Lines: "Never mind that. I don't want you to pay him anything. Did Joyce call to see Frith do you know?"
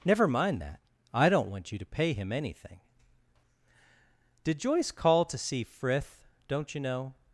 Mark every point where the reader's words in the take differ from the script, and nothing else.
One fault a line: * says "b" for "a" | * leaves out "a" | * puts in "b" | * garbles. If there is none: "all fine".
* says "don't" for "do"